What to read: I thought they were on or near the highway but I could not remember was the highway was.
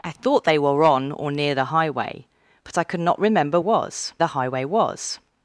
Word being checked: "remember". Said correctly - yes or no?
yes